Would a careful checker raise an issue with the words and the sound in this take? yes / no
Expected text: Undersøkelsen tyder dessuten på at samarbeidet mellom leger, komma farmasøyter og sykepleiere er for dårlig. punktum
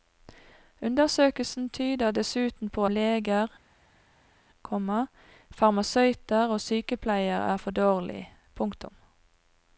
yes